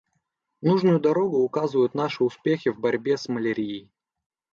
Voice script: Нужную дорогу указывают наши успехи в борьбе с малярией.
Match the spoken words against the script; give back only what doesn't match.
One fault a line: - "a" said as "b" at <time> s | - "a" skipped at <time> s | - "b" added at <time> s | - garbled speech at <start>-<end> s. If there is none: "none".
none